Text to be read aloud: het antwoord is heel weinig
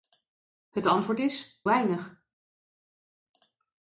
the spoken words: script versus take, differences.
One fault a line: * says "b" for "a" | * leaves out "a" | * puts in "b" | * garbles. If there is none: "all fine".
* leaves out "heel"